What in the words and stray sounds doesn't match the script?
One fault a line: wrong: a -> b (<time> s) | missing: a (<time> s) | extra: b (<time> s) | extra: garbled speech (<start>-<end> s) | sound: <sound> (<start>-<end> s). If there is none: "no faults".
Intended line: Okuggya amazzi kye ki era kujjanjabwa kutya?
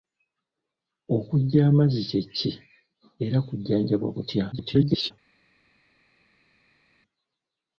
extra: garbled speech (4.5-5.1 s)